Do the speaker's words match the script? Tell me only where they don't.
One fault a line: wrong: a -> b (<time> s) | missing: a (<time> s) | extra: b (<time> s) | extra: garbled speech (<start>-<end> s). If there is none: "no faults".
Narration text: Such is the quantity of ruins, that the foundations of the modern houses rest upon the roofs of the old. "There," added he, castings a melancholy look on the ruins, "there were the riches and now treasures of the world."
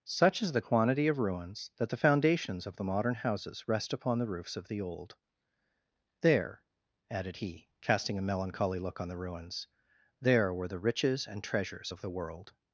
wrong: castings -> casting (7.8 s)
missing: now (11.4 s)